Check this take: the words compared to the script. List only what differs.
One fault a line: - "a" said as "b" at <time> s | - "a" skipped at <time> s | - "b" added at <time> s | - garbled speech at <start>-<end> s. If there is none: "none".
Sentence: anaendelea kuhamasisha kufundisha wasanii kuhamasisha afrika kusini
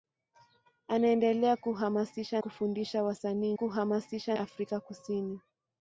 none